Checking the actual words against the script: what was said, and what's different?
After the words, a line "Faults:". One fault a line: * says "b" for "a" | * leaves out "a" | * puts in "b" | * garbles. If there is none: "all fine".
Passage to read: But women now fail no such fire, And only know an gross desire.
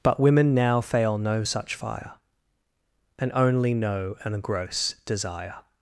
But women now fail no such fire, And only know an gross desire.
Faults:
all fine